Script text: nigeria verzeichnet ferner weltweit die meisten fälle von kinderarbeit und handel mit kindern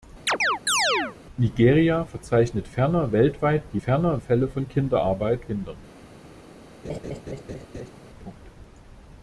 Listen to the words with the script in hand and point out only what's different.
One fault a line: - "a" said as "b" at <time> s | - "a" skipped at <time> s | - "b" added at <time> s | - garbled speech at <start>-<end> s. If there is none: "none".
- "meisten" said as "ferner" at 3.8 s
- "und handel mit" skipped at 5.4 s